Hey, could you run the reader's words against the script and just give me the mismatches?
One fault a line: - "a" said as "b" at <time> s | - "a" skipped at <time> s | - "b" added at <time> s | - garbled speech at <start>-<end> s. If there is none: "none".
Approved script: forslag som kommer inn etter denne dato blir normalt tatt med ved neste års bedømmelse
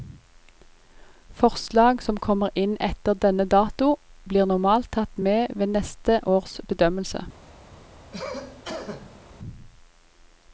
none